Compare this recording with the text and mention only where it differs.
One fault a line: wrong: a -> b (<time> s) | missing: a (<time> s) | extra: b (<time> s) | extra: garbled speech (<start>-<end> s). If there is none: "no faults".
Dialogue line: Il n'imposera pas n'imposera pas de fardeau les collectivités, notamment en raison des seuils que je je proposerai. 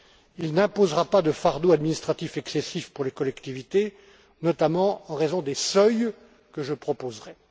wrong: n'imposera pas de fardeau -> de fardeau administratif excessif pour (1.2 s)
missing: je (6.7 s)